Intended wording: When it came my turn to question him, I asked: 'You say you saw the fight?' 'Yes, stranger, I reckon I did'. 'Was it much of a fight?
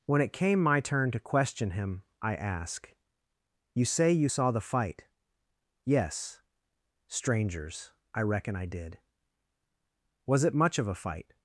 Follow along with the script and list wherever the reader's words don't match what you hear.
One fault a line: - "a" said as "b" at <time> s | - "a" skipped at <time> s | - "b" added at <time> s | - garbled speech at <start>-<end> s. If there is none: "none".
- "asked" said as "ask" at 2.4 s
- "stranger" said as "strangers" at 7.1 s